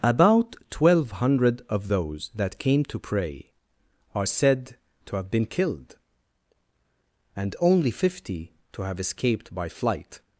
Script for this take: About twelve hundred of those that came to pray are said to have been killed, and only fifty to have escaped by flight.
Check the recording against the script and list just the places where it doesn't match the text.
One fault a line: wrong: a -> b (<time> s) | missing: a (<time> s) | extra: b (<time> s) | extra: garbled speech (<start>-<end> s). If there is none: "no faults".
no faults